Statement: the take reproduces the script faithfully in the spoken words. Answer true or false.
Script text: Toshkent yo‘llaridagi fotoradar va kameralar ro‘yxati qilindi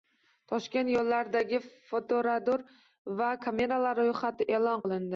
false